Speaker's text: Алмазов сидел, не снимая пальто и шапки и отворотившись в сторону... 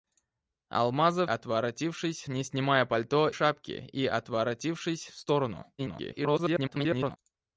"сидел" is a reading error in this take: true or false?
true